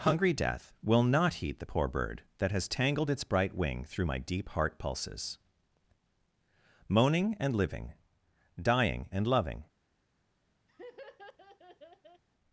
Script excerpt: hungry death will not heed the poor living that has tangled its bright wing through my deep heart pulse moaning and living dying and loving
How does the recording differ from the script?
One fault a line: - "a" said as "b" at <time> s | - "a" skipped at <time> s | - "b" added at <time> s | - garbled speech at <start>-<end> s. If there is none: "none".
- "living" said as "bird" at 1.9 s
- "pulse" said as "pulses" at 4.8 s